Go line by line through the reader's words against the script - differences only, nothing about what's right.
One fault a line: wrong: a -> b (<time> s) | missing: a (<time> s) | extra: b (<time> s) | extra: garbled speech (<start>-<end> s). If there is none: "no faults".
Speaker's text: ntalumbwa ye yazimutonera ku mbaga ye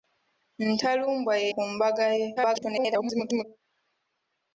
missing: yazimutonera (1.5 s)
extra: garbled speech (2.4-3.4 s)